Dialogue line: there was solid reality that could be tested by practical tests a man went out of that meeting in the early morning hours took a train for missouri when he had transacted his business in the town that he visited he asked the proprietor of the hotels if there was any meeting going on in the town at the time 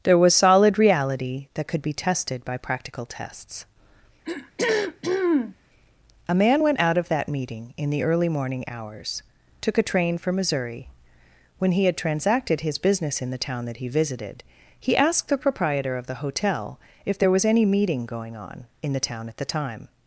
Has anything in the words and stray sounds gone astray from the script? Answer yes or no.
yes